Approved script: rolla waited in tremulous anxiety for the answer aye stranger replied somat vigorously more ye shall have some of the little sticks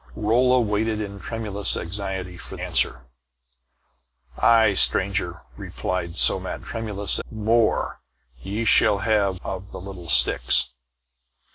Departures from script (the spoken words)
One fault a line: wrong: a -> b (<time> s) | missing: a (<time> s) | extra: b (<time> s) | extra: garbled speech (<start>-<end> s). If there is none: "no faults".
missing: the (2.6 s)
wrong: vigorously -> tremulous (6.6 s)
missing: some (9.4 s)